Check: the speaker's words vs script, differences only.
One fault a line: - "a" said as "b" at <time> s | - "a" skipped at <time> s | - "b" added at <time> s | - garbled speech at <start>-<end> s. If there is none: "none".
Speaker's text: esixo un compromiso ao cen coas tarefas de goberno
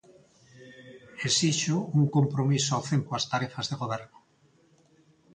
none